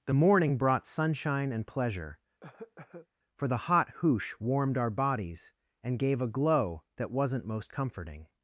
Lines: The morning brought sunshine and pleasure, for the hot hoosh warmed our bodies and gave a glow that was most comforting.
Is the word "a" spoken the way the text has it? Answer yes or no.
yes